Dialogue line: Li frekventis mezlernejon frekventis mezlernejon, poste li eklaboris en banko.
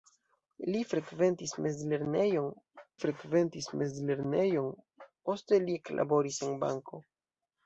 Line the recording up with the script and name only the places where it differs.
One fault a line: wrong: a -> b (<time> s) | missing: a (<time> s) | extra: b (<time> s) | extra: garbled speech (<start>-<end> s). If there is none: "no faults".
no faults